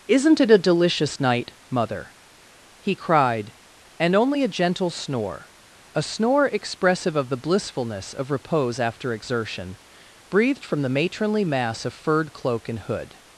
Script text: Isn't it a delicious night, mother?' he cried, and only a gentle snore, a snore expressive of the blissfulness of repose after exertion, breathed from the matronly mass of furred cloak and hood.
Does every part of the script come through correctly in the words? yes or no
yes